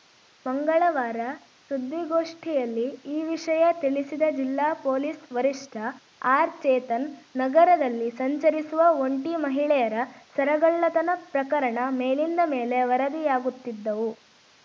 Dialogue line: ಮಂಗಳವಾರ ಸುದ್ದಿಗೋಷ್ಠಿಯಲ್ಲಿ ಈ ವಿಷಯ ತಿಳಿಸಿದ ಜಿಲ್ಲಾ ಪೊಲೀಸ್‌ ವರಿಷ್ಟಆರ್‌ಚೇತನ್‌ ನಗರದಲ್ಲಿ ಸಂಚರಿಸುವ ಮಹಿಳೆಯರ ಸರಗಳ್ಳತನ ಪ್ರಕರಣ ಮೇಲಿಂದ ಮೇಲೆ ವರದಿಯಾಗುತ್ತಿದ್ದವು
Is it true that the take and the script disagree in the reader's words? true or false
true